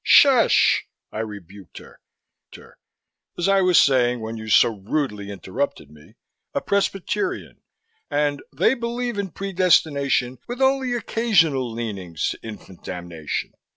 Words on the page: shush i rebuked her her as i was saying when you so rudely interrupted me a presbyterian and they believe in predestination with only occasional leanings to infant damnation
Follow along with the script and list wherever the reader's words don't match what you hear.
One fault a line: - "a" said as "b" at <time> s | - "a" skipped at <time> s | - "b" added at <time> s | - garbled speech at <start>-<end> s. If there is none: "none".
none